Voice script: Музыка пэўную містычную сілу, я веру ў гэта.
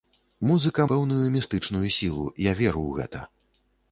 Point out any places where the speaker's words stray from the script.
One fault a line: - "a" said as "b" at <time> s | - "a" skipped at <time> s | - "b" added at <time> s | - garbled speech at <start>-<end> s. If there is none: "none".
none